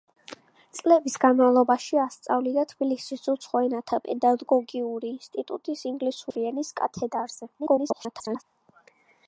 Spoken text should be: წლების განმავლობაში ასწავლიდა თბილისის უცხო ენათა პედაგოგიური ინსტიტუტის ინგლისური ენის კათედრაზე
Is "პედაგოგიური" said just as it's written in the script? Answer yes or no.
yes